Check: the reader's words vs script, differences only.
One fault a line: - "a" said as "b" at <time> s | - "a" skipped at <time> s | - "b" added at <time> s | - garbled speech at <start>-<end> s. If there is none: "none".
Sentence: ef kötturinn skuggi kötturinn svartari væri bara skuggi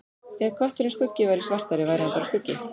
- "kötturinn" said as "væri" at 1.3 s
- "hann" added at 2.1 s